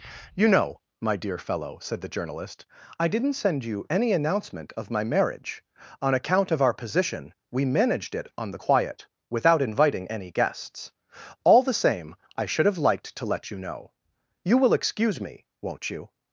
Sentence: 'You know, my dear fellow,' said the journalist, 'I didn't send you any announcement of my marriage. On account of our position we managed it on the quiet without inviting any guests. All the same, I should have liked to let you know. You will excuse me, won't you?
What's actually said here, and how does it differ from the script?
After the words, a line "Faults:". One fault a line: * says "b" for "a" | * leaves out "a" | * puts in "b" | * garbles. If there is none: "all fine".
'You know, my dear fellow,' said the journalist, 'I didn't send you any announcement of my marriage. On account of our position we managed it on the quiet without inviting any guests. All the same, I should have liked to let you know. You will excuse me, won't you?
Faults:
all fine